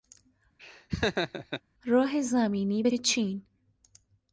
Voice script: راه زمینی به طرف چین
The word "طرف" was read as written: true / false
false